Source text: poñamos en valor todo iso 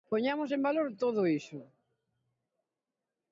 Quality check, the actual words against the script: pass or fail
pass